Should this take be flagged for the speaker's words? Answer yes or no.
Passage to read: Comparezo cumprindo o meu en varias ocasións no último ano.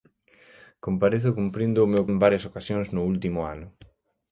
no